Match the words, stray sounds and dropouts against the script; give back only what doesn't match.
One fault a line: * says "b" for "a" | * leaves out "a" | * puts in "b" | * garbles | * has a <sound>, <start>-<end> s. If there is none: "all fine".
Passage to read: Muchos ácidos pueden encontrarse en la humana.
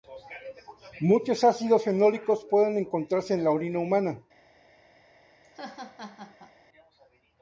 * puts in "fenólicos"
* puts in "orina"
* has a laugh, 5.4-6.6 s